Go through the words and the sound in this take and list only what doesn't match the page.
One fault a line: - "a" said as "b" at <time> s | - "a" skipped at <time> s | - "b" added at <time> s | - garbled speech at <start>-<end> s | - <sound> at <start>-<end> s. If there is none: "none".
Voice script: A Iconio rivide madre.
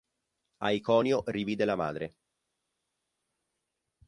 - "la" added at 1.6 s